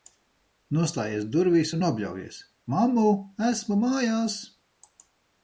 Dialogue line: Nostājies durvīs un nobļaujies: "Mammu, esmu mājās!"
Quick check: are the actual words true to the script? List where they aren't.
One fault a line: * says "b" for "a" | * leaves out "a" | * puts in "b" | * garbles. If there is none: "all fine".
all fine